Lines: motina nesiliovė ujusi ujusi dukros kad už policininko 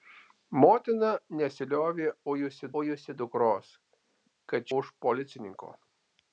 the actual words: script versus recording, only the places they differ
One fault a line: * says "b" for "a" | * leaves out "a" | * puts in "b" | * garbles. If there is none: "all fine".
all fine